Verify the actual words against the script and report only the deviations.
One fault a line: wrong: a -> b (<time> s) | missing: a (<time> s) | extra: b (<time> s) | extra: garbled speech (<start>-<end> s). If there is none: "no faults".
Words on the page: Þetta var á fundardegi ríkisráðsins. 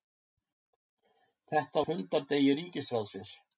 missing: var (1.8 s)